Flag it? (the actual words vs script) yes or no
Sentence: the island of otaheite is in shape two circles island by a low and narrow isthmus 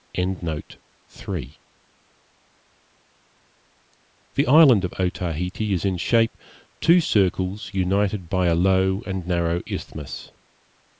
yes